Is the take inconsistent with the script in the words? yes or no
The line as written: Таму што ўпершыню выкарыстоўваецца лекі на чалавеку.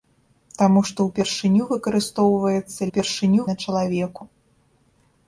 yes